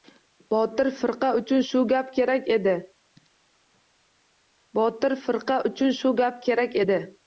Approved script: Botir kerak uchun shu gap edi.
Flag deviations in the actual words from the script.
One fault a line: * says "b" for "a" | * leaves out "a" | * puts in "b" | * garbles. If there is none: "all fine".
* says "firqa" for "kerak"
* puts in "kerak"